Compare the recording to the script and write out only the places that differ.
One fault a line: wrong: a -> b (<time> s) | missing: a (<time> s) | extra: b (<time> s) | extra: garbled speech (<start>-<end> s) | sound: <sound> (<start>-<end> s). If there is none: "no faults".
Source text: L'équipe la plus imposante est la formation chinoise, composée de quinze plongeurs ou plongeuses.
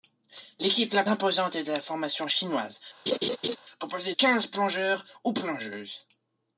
missing: plus (1.0 s)
sound: laugh (3.1-3.6 s)
missing: de (4.1 s)